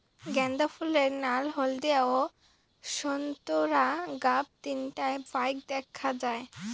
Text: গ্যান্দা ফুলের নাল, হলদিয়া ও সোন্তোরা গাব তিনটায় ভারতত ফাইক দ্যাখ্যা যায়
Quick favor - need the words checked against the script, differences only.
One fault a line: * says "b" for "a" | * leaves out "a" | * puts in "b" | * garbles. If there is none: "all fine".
* leaves out "ভারতত"